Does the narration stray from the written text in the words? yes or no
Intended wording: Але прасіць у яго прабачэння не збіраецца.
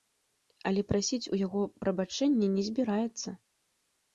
no